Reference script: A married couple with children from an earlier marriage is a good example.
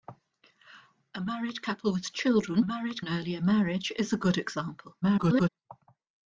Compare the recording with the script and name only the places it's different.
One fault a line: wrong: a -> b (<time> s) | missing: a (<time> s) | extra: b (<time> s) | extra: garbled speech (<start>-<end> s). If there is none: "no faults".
wrong: from -> married (2.6 s)
extra: garbled speech (5.0-5.5 s)